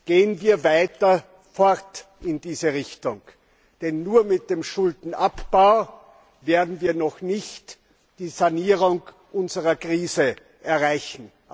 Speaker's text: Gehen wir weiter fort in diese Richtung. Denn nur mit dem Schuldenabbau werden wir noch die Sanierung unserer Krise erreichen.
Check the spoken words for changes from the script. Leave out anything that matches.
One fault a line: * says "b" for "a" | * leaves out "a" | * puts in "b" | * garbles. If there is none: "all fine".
* puts in "nicht"